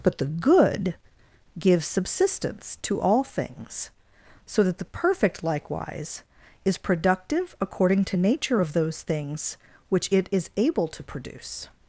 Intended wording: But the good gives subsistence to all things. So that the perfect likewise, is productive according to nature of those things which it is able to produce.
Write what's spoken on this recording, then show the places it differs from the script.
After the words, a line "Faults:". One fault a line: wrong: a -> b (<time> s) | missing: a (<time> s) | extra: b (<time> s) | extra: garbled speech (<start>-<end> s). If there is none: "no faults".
But the good gives subsistence to all things. So that the perfect likewise, is productive according to nature of those things which it is able to produce.
Faults:
no faults